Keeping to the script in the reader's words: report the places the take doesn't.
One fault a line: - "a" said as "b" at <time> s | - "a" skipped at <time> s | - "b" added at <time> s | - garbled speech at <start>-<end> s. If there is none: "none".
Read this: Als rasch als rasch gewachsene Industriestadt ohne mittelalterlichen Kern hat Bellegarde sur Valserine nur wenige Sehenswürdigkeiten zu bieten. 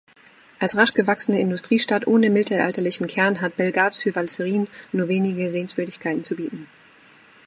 - "als rasch" skipped at 0.9 s